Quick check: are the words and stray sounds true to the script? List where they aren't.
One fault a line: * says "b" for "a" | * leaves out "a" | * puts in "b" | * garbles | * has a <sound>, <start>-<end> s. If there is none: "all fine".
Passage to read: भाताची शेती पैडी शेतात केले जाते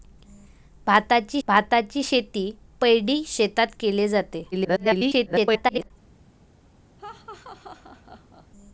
* puts in "भाताची"
* garbles
* has a laugh, 7.0-8.5 s